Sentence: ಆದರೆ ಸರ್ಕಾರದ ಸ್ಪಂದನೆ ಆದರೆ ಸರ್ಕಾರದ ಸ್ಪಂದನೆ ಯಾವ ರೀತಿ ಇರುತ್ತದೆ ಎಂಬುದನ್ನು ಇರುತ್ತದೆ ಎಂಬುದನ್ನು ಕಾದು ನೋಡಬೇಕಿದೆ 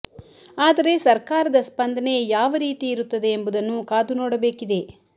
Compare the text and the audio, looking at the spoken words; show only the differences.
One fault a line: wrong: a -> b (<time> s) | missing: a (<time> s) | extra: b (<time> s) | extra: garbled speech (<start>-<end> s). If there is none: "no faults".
missing: ಆದರೆ ಸರ್ಕಾರದ ಸ್ಪಂದನೆ (2.1 s)
missing: ಇರುತ್ತದೆ ಎಂಬುದನ್ನು (3.8 s)